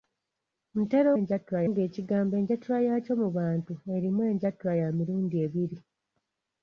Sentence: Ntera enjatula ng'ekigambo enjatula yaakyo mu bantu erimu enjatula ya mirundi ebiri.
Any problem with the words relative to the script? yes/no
no